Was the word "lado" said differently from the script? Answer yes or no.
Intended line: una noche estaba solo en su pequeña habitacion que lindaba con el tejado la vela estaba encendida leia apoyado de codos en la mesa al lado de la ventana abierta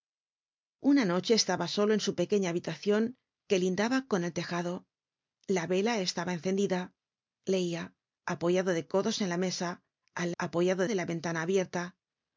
yes